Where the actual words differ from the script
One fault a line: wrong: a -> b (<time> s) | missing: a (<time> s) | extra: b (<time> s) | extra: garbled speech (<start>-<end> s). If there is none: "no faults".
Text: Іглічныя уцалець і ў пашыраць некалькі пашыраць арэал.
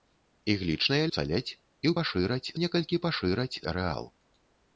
no faults